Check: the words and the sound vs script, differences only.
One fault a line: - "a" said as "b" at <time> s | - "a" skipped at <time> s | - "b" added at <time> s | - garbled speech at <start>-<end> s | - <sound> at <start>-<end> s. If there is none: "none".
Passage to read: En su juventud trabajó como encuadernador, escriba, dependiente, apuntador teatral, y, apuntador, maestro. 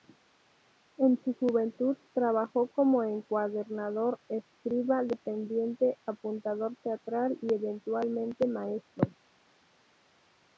- "apuntador" said as "eventualmente" at 7.5 s